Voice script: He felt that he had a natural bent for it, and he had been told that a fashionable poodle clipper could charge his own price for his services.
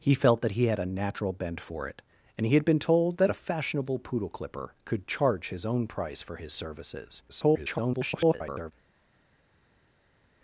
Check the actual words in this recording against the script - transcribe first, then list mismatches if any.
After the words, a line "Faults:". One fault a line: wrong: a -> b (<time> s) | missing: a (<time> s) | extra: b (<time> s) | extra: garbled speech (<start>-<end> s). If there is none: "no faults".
He felt that he had a natural bent for it, and he had been told that a fashionable poodle clipper could charge his own price for his services. [garbled]
Faults:
extra: garbled speech (7.3-8.7 s)